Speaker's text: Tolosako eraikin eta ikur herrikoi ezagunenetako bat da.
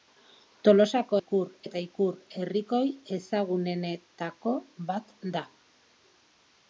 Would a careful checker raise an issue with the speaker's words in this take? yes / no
yes